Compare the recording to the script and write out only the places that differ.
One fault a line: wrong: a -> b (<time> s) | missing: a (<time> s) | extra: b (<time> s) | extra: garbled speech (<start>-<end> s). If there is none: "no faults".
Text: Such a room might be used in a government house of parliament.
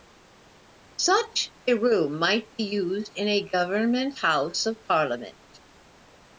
no faults